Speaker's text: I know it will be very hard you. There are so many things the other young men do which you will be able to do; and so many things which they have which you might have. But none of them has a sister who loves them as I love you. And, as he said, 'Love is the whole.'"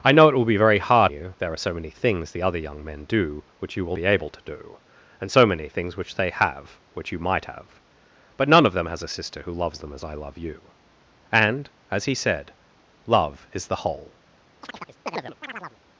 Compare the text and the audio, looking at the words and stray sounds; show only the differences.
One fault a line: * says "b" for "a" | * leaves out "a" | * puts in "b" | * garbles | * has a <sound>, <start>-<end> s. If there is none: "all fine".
* has a chirp, 14.6-15.8 s